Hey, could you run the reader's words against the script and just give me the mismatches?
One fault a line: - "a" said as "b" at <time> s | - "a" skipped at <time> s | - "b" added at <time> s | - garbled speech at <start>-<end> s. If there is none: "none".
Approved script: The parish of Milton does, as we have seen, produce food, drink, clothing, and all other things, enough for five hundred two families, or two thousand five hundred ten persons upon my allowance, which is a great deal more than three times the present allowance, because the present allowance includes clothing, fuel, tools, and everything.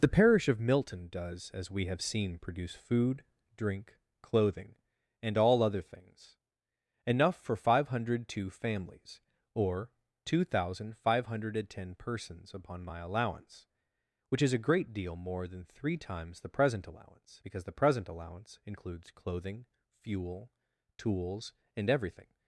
none